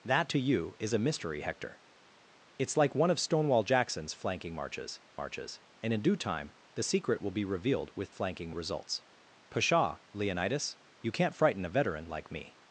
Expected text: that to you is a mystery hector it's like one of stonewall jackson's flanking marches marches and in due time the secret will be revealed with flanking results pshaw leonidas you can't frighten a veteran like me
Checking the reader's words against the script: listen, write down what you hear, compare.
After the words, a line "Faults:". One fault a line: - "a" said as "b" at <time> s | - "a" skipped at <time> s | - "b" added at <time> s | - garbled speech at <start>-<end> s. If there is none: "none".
that to you is a mystery hector it's like one of stonewall jackson's flanking marches marches and in due time the secret will be revealed with flanking results pshaw leonidas you can't frighten a veteran like me
Faults:
none